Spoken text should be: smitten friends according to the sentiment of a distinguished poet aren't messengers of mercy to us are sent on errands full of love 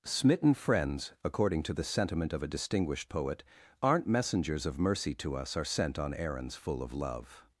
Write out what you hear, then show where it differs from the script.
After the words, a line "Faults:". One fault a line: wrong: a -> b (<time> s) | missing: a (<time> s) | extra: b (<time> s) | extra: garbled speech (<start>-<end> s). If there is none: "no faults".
smitten friends according to the sentiment of a distinguished poet aren't messengers of mercy to us are sent on errands full of love
Faults:
no faults